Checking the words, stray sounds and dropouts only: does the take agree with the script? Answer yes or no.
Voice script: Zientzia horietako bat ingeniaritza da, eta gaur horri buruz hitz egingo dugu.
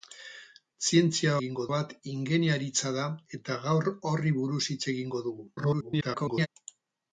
no